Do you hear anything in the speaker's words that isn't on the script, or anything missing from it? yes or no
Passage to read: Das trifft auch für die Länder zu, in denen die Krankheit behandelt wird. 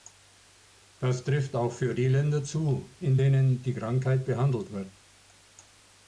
no